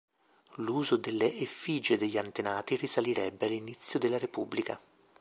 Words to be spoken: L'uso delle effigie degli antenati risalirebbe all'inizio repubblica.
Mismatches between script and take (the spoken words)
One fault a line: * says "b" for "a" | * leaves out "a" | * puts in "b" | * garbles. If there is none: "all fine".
* puts in "della"